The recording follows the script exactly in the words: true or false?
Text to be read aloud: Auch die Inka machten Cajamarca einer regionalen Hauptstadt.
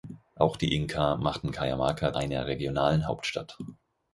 true